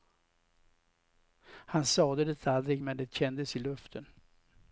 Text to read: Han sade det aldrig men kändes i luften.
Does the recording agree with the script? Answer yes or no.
no